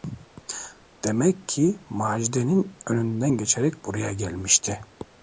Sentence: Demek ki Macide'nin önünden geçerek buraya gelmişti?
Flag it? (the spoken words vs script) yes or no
no